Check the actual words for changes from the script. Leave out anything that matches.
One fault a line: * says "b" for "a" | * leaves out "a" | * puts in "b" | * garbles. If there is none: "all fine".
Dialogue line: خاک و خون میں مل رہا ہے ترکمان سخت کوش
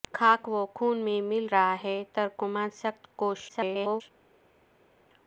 * garbles